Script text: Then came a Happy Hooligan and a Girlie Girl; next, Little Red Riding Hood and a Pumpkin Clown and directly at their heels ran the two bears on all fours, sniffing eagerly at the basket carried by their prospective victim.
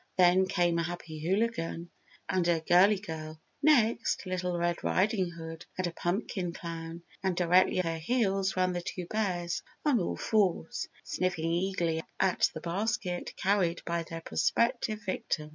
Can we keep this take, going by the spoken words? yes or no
no